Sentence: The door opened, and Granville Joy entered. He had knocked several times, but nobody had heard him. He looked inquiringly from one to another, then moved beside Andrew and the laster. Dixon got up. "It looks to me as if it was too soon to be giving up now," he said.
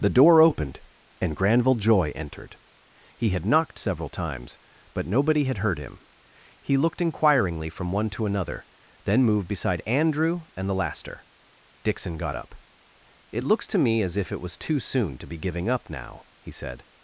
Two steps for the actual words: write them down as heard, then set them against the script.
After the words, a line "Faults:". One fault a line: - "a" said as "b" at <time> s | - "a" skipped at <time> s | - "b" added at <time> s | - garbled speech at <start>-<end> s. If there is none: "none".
The door opened, and Granville Joy entered. He had knocked several times, but nobody had heard him. He looked inquiringly from one to another, then moved beside Andrew and the laster. Dixon got up. "It looks to me as if it was too soon to be giving up now," he said.
Faults:
none